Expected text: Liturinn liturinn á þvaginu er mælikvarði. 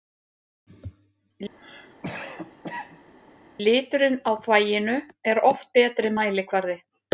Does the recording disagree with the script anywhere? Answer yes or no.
yes